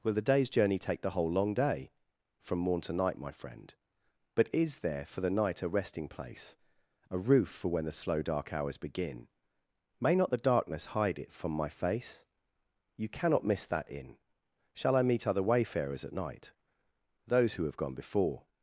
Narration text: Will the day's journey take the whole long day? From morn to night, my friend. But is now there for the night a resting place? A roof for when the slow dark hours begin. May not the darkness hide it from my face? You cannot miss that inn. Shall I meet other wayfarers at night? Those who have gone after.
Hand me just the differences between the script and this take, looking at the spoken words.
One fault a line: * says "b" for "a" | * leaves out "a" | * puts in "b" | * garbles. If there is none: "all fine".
* leaves out "now"
* says "before" for "after"